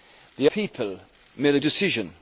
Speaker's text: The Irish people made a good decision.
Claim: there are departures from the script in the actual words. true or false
true